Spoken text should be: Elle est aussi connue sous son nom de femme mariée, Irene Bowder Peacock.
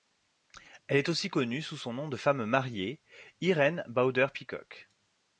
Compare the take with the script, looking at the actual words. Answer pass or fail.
pass